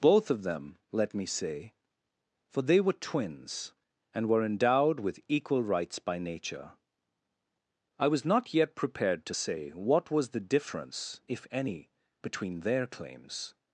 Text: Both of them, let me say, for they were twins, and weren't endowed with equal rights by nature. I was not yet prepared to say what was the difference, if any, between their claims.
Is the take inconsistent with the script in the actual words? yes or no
yes